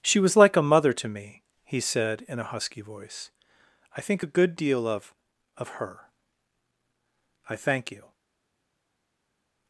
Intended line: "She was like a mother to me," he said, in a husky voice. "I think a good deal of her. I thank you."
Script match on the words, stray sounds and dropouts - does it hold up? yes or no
no